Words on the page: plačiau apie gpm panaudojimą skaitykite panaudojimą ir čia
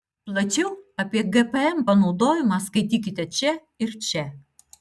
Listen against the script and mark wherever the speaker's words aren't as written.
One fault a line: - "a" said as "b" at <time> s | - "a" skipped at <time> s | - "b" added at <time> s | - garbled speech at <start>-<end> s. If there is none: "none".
- "panaudojimą" said as "čia" at 3.4 s